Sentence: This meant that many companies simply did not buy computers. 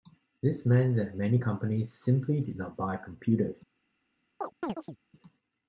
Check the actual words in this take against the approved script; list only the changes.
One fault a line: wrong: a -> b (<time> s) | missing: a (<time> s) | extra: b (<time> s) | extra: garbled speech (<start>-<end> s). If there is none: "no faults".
no faults